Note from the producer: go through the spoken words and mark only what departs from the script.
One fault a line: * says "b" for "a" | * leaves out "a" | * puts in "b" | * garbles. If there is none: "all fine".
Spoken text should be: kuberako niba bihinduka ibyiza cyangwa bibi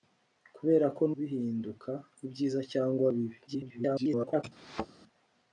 * leaves out "niba"
* garbles